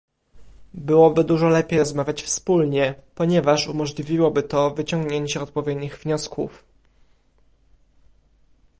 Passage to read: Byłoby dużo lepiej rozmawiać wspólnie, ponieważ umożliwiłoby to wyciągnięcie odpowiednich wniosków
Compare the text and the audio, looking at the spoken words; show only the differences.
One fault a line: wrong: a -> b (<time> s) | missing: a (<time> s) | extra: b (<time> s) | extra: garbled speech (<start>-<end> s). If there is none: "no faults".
no faults